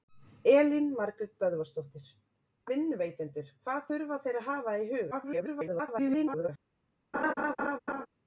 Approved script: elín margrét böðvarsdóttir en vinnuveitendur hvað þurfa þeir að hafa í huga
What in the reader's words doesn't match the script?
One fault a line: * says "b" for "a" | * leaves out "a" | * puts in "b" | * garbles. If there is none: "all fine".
* leaves out "en"
* garbles